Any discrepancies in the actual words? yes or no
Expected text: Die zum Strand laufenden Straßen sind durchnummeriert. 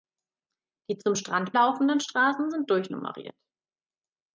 no